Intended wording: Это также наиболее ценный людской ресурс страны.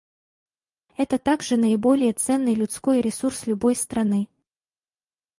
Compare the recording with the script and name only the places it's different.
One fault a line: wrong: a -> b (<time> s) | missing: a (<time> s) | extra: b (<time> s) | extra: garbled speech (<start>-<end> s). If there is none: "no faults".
extra: любой (3.5 s)